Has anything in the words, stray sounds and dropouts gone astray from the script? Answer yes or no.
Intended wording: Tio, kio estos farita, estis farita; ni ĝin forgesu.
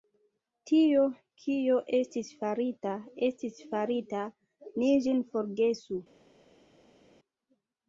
yes